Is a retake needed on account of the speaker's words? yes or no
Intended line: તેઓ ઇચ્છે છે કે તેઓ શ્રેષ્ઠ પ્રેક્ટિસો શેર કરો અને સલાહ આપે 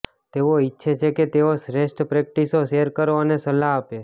no